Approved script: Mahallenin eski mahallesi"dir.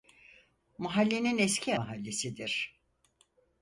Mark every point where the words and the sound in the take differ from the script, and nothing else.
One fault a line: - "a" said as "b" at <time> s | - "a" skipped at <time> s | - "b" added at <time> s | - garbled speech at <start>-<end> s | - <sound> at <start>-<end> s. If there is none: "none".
none